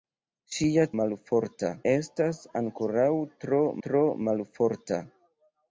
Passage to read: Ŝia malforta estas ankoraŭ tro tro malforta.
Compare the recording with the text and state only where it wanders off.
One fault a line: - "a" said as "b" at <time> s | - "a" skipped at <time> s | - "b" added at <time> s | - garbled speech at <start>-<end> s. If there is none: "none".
none